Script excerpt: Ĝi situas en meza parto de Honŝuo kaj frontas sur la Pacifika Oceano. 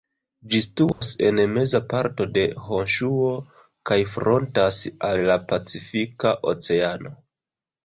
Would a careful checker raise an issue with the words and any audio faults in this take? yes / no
yes